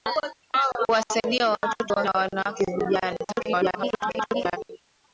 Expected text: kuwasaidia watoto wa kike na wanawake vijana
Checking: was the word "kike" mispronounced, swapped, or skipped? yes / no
yes